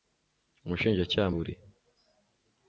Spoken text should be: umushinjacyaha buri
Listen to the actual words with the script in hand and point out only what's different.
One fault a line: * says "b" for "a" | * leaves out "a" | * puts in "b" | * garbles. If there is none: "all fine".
all fine